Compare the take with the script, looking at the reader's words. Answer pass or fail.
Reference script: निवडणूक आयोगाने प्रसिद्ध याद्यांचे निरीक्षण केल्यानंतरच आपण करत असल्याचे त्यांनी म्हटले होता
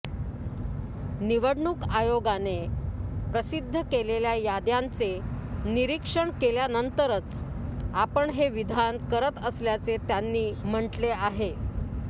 fail